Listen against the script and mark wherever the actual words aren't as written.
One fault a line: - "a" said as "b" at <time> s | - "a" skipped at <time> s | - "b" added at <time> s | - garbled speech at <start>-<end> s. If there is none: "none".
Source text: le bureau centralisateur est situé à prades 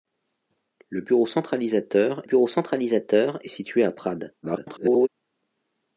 - "bureau centralisateur" added at 2.2 s
- garbled speech at 4.4-5.1 s